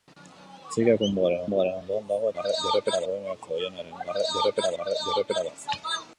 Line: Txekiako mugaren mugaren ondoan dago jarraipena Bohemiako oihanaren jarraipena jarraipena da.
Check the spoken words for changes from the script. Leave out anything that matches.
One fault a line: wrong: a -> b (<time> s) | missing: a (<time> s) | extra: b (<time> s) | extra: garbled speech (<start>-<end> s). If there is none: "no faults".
no faults